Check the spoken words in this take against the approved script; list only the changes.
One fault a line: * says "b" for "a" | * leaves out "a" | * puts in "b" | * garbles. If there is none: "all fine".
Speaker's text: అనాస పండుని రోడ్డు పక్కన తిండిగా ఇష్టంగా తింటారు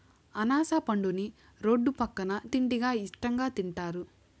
all fine